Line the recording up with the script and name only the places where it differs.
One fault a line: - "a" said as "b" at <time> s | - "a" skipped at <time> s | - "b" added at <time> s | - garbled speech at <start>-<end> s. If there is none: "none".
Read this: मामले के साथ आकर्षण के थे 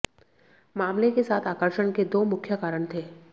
- "दो मुख्य कारण" added at 2.0 s